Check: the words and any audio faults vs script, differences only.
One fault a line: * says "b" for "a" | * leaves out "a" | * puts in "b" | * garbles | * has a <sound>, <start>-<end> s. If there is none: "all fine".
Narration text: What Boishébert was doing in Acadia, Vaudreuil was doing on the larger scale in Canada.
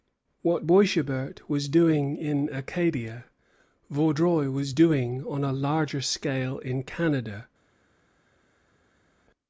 * says "a" for "the"